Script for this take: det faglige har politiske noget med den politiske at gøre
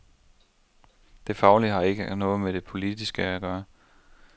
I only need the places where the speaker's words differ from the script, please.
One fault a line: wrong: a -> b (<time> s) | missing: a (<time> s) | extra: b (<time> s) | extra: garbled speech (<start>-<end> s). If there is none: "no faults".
wrong: politiske -> ikke (1.8 s)
wrong: den -> det (2.5 s)